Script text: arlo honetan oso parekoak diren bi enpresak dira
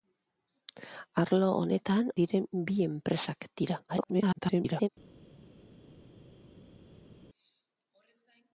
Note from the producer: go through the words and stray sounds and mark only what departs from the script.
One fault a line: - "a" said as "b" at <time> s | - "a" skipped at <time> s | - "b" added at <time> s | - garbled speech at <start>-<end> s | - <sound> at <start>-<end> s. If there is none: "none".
- "oso parekoak" skipped at 2.1 s
- garbled speech at 3.9-4.9 s